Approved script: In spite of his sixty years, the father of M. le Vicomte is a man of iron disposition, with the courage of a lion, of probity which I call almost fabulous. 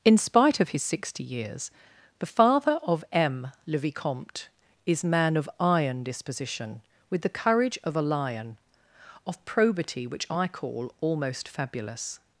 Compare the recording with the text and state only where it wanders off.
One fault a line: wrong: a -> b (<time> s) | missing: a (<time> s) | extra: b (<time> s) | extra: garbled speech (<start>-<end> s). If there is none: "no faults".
missing: a (5.0 s)